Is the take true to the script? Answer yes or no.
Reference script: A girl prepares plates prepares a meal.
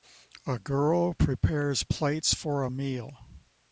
no